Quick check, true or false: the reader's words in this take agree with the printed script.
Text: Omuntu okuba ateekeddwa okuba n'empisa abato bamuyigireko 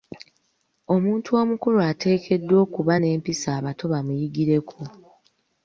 false